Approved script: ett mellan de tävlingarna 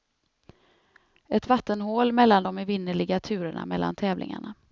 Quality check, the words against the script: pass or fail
fail